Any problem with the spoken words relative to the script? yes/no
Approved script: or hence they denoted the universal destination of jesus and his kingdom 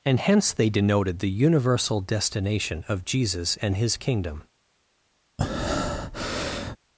yes